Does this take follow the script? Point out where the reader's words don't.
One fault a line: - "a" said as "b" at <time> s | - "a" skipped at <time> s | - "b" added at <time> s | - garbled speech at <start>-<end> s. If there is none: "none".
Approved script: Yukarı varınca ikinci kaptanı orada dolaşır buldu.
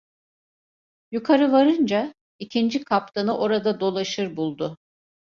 none